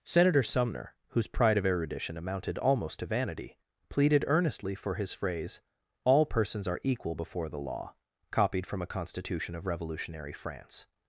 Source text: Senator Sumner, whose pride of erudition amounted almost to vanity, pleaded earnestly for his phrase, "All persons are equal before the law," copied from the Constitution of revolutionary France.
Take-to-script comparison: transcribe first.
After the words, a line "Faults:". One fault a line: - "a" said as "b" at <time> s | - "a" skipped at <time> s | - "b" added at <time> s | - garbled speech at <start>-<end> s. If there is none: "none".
Senator Sumner, whose pride of erudition amounted almost to vanity, pleaded earnestly for his phrase, "All persons are equal before the law," copied from a Constitution of revolutionary France.
Faults:
- "the" said as "a" at 8.8 s